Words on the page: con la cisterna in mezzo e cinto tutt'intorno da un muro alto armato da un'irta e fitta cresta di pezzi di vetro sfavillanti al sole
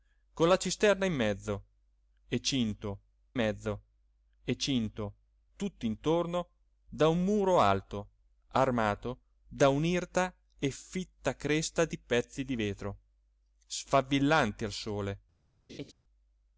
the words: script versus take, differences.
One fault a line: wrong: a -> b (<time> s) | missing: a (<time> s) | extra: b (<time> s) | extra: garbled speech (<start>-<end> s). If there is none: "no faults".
extra: mezzo e cinto (3.3 s)